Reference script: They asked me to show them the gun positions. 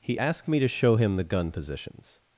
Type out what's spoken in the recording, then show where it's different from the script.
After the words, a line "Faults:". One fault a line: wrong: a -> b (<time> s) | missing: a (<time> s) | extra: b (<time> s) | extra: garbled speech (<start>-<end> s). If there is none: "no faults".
He asked me to show him the gun positions.
Faults:
wrong: They -> He (0.0 s)
wrong: them -> him (0.9 s)